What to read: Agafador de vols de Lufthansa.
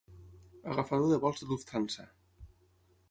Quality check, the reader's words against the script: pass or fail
pass